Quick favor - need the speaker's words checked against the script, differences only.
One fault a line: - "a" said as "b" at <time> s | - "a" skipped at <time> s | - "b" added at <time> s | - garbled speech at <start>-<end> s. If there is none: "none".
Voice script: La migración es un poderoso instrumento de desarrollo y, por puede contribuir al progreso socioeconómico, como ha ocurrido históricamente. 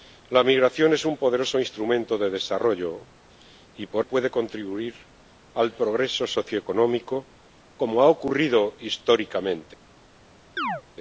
none